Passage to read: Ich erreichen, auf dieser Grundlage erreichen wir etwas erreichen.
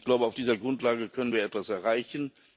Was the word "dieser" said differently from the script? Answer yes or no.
no